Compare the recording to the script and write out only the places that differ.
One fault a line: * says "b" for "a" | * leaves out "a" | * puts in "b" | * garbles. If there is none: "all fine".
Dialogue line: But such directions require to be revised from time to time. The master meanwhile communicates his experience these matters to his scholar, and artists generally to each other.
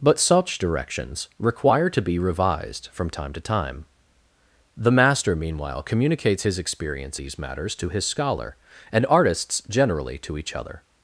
all fine